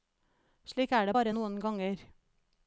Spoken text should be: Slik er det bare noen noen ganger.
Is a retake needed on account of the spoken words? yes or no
yes